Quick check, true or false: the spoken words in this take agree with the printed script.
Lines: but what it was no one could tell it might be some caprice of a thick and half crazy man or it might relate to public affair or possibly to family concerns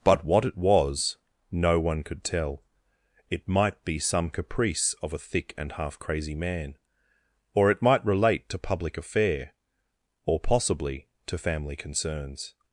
true